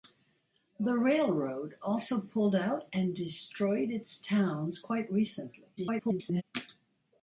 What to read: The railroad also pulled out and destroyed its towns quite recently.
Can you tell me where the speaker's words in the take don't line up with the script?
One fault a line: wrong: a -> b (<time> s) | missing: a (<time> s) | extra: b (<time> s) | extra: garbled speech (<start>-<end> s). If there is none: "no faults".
extra: garbled speech (5.8-6.4 s)